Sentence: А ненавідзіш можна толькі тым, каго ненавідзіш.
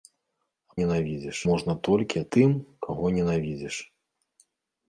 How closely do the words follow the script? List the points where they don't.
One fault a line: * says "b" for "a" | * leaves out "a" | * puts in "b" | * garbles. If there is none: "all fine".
all fine